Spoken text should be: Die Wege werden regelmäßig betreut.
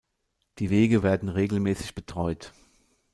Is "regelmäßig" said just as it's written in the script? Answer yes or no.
yes